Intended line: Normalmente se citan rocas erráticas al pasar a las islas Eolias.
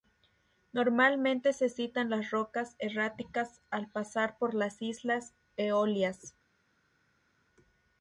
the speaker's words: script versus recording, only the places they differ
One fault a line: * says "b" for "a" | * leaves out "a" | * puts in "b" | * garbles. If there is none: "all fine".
* puts in "las"
* says "por" for "a"